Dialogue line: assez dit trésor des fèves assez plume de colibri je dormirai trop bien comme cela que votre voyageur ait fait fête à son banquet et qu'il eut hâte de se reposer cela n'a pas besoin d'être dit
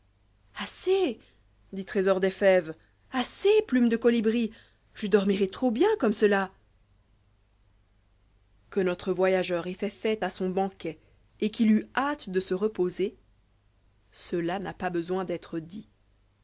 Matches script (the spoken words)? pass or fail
fail